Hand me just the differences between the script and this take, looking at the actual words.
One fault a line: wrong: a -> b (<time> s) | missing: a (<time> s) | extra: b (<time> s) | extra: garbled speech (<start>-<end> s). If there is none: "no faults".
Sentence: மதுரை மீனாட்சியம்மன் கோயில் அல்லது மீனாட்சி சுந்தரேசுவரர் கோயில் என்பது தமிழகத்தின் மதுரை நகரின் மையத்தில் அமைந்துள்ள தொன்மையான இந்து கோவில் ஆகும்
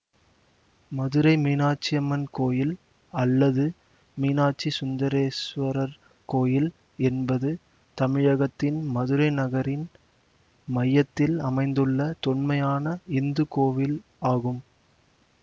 no faults